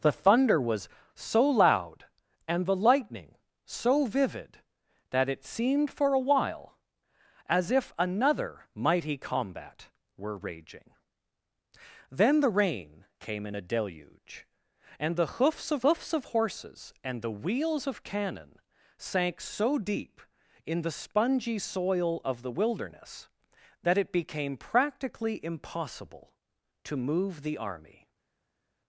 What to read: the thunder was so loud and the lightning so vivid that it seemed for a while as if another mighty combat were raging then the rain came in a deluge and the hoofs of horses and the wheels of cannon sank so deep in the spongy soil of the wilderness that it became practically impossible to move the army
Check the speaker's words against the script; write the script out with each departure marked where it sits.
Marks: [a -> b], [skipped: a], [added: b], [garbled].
the thunder was so loud and the lightning so vivid that it seemed for a while as if another mighty combat were raging then the rain came in a deluge and the hoofs of [added: hoofs of] horses and the wheels of cannon sank so deep in the spongy soil of the wilderness that it became practically impossible to move the army